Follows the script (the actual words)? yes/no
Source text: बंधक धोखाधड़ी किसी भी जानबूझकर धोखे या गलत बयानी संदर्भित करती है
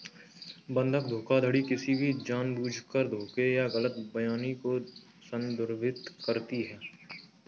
no